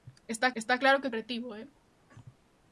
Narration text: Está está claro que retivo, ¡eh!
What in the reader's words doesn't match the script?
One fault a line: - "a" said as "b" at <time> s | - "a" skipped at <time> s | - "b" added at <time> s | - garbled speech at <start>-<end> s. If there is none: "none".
none